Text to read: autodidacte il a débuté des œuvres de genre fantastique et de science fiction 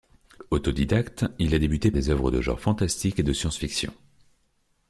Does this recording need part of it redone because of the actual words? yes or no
no